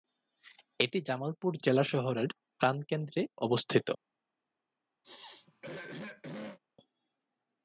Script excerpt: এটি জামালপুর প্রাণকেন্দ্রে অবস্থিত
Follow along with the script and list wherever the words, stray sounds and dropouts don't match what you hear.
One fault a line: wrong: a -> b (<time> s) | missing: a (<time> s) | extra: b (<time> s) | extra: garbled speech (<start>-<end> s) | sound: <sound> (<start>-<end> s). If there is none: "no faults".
extra: জেলা শহরের (1.6 s)
sound: throat clearing (5.0-6.6 s)